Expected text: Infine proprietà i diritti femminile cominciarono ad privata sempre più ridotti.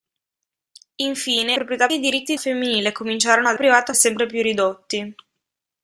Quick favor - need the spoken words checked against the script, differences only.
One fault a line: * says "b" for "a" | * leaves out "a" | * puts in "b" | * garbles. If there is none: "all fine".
all fine